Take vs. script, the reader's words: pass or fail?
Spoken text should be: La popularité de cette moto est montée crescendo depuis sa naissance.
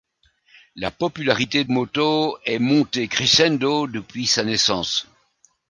fail